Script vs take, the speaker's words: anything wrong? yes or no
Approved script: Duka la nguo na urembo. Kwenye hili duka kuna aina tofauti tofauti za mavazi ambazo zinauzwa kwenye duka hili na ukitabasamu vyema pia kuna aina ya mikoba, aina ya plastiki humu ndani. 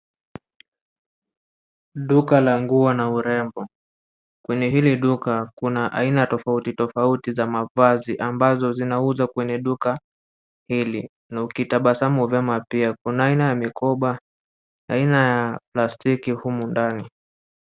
no